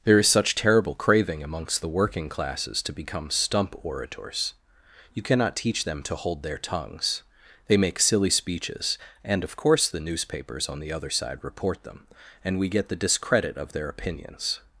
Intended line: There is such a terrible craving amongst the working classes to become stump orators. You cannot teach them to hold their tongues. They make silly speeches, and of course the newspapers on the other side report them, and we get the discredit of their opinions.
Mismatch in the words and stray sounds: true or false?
true